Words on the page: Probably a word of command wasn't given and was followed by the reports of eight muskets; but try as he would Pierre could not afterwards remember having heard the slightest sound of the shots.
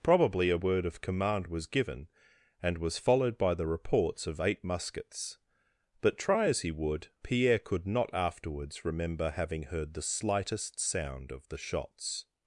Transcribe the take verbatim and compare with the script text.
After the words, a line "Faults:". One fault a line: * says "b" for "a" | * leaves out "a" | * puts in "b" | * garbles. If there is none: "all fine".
Probably a word of command was given and was followed by the reports of eight muskets; but try as he would Pierre could not afterwards remember having heard the slightest sound of the shots.
Faults:
* says "was" for "wasn't"